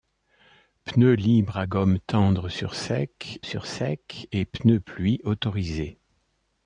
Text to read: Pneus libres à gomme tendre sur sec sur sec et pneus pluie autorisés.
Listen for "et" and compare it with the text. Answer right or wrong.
right